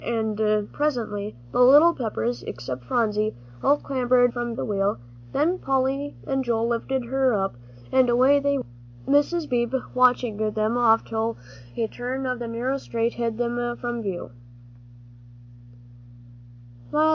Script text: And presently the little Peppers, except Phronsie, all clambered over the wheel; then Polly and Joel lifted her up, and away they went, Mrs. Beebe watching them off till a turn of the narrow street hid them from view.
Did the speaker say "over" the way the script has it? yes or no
no